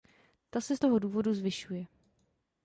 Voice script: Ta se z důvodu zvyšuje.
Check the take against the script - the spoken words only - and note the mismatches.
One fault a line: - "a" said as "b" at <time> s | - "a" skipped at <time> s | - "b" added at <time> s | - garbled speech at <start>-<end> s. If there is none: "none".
- "toho" added at 0.8 s